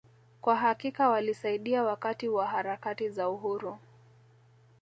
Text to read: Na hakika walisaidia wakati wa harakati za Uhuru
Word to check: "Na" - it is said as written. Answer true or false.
false